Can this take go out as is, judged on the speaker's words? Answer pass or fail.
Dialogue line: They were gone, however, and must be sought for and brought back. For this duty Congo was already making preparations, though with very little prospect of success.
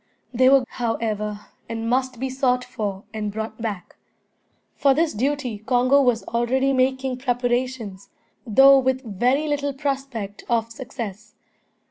fail